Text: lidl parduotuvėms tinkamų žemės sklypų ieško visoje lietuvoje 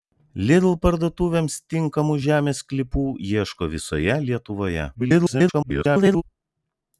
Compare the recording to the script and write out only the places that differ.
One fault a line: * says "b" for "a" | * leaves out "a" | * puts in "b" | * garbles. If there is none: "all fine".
* garbles